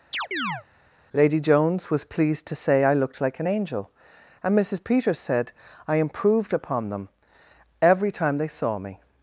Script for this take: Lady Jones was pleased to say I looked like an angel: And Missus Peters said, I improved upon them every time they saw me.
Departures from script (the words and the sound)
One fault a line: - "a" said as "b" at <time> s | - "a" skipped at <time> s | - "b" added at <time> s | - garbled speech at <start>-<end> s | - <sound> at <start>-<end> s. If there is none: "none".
- chirp at 0.1-0.6 s